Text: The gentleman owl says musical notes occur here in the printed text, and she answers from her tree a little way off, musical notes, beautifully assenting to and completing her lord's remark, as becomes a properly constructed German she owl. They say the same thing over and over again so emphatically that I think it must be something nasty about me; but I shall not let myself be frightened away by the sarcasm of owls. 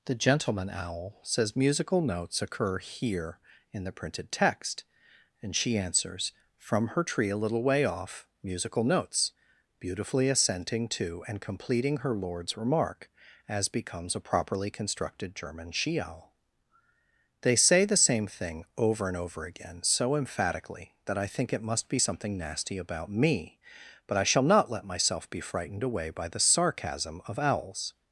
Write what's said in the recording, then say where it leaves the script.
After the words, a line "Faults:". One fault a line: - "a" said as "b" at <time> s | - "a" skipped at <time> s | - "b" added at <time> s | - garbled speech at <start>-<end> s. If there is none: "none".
The gentleman owl says musical notes occur here in the printed text, and she answers from her tree a little way off, musical notes, beautifully assenting to and completing her lord's remark, as becomes a properly constructed German she owl. They say the same thing over and over again so emphatically that I think it must be something nasty about me; but I shall not let myself be frightened away by the sarcasm of owls.
Faults:
none